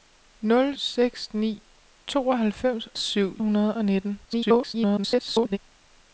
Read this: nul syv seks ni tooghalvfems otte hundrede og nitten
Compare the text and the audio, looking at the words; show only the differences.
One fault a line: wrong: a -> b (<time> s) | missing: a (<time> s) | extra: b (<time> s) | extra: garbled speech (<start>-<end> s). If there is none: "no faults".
missing: syv (0.8 s)
wrong: otte -> syv (2.9 s)
extra: garbled speech (4.3-5.6 s)